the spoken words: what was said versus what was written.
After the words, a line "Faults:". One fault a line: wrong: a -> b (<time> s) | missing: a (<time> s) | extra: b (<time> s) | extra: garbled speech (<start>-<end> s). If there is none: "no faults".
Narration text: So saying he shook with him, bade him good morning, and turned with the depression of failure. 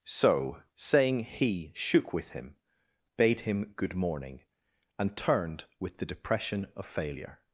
So saying he shook with him, bade him good morning, and turned with the depression of failure.
Faults:
no faults